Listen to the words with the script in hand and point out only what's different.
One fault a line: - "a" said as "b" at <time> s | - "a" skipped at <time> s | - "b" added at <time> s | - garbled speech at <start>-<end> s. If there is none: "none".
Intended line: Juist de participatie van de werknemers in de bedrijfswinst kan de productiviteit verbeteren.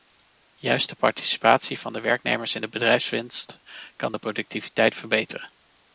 none